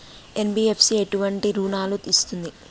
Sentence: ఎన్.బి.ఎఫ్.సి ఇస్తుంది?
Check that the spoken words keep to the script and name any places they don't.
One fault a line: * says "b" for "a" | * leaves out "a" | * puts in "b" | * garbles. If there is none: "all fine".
* puts in "ఎటువంటి రుణాలను"